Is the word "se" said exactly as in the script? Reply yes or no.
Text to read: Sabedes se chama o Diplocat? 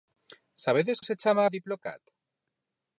yes